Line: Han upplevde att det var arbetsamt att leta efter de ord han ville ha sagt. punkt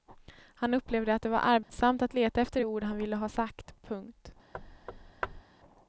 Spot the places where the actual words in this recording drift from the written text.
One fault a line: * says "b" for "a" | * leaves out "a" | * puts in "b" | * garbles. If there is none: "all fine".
all fine